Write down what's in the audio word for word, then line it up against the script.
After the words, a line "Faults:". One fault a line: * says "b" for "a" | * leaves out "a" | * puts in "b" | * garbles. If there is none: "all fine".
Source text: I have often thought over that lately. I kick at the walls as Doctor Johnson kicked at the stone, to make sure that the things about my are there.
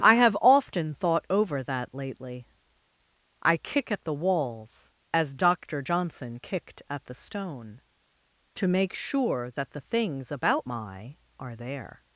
I have often thought over that lately. I kick at the walls as Doctor Johnson kicked at the stone, to make sure that the things about my are there.
Faults:
all fine